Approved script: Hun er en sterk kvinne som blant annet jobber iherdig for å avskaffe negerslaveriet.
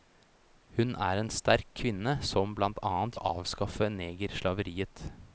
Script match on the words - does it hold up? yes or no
no